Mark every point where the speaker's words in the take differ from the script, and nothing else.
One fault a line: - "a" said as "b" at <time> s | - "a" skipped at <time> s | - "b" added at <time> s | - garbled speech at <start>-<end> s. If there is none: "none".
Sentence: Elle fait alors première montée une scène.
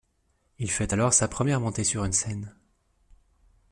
- "Elle" said as "Il" at 0.6 s
- "sa" added at 1.1 s
- "sur" added at 1.8 s